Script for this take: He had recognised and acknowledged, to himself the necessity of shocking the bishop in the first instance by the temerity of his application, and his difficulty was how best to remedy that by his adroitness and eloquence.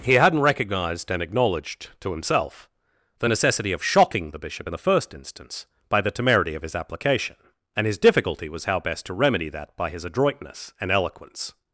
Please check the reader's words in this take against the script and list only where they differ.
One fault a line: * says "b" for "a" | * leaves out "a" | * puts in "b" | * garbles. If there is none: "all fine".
* says "hadn't" for "had"